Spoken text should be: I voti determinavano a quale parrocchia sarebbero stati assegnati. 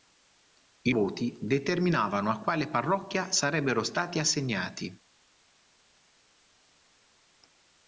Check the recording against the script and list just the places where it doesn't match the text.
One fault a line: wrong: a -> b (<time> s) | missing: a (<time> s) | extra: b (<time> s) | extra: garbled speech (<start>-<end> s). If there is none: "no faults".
no faults